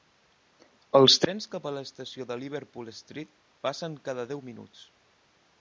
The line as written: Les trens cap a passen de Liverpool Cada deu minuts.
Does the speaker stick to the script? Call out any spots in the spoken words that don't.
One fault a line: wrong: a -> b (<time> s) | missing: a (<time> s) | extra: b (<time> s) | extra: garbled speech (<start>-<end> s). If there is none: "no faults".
wrong: Les -> Els (1.0 s)
wrong: passen -> l'estació (1.8 s)
extra: Street passen (3.0 s)